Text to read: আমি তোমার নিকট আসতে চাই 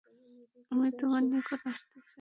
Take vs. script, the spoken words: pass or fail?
pass